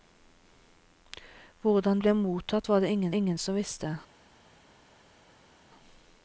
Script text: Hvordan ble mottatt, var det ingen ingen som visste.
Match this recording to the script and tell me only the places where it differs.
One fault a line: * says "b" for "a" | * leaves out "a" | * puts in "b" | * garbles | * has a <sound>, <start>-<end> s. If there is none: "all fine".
all fine